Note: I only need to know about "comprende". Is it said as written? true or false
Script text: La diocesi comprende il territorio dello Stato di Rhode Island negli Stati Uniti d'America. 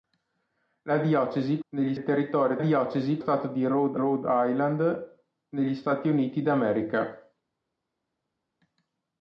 false